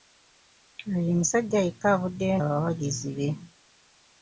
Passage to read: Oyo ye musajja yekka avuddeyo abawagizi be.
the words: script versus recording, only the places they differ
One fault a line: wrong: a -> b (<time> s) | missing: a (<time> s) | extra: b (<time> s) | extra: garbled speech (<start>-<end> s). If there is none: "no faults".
no faults